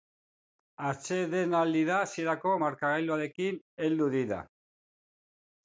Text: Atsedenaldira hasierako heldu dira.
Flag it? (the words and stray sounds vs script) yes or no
yes